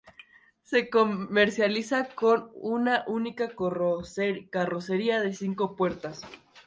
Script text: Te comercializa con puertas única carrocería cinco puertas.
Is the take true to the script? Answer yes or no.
no